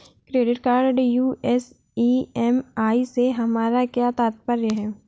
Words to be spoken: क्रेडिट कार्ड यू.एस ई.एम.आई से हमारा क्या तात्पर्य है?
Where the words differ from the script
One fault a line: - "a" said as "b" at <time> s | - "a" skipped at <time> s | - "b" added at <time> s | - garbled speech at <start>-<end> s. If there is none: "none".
none